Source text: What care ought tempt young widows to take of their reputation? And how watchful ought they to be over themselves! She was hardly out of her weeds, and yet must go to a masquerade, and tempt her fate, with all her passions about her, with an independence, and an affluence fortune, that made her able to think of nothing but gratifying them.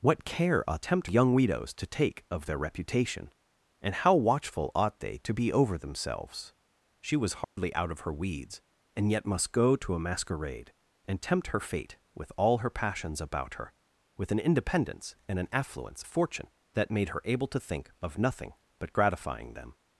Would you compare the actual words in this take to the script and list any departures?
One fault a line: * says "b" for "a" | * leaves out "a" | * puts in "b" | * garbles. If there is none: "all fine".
all fine